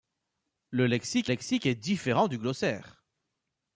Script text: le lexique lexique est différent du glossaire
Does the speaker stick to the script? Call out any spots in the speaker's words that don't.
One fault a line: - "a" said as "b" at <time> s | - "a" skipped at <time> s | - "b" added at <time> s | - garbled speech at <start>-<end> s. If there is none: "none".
none